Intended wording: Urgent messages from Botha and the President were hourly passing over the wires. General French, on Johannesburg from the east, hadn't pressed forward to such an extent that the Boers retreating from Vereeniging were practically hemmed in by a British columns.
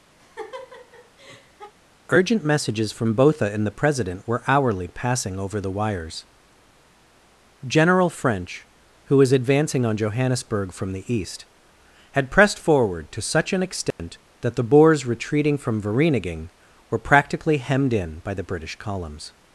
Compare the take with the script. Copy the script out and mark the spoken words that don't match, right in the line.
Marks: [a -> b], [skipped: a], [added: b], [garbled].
Urgent messages from Botha and the President were hourly passing over the wires. General French, [added: who was advancing] on Johannesburg from the east, [hadn't -> had] pressed forward to such an extent that the Boers retreating from Vereeniging were practically hemmed in by [a -> the] British columns.